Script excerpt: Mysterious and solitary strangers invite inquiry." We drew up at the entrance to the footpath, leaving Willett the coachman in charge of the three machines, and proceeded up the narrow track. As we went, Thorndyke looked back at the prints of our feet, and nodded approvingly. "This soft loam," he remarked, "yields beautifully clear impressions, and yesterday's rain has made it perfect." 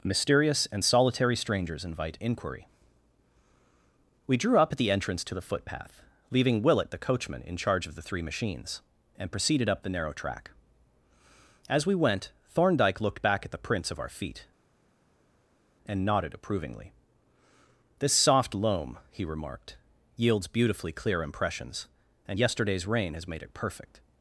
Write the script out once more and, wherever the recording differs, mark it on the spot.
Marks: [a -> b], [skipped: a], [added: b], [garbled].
Mysterious and solitary strangers invite inquiry." We drew up at the entrance to the footpath, leaving Willett the coachman in charge of the three machines, and proceeded up the narrow track. As we went, Thorndyke looked back at the prints of our feet, and nodded approvingly. "This soft loam," he remarked, "yields beautifully clear impressions, and yesterday's rain has made it perfect."